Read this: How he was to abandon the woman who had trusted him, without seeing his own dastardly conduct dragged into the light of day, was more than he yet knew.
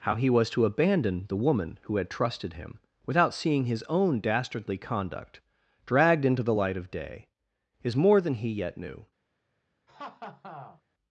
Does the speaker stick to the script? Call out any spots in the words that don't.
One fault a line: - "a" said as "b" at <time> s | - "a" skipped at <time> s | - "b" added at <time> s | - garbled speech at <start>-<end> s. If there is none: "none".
- "was" said as "is" at 7.8 s